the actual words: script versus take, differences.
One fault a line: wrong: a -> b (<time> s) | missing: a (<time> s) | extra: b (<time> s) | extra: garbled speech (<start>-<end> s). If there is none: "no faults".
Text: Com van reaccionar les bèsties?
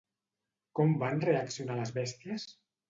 no faults